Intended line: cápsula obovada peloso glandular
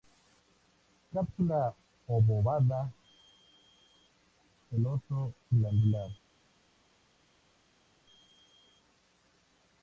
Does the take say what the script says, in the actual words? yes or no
yes